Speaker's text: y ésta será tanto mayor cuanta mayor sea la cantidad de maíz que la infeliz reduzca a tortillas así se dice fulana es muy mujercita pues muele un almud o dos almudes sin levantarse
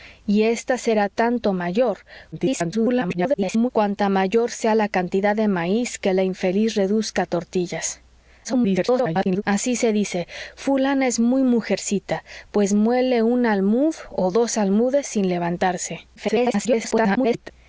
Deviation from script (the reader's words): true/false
true